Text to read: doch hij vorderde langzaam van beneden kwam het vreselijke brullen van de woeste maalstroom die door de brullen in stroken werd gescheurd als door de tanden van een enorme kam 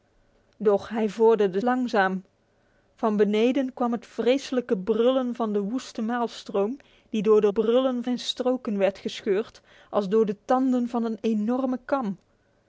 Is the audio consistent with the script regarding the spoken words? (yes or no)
yes